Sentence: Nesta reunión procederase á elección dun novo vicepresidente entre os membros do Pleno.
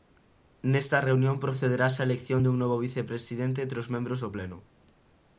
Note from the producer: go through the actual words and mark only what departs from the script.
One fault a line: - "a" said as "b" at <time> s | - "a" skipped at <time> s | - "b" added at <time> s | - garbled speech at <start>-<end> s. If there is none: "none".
none